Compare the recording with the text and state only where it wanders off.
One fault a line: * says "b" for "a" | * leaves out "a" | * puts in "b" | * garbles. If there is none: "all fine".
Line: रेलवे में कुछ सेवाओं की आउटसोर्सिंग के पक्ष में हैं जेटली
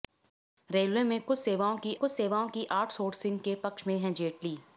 * puts in "कुछ सेवाओं की"